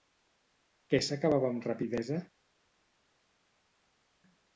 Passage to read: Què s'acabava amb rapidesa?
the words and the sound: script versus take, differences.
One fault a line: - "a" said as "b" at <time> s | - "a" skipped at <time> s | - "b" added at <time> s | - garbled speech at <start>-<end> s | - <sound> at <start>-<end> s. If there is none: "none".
none